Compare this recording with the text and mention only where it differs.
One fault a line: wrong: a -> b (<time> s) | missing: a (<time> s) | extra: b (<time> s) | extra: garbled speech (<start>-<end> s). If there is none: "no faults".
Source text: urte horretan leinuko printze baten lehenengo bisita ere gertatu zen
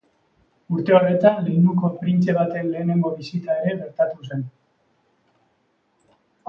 no faults